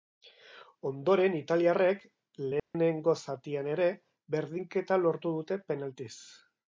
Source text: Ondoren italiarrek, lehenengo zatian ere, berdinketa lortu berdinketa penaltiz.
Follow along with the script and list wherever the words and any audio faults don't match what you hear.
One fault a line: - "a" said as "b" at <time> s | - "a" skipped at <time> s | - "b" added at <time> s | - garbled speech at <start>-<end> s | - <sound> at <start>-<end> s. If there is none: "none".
- dropout at 2.6-2.7 s
- "berdinketa" said as "dute" at 5.4 s